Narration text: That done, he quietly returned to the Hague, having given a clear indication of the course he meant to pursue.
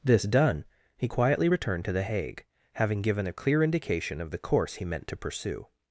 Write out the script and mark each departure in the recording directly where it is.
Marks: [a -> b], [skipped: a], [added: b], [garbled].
[That -> This] done, he quietly returned to the Hague, having given a clear indication of the course he meant to pursue.